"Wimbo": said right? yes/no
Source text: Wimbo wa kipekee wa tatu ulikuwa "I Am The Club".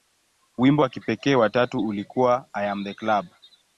yes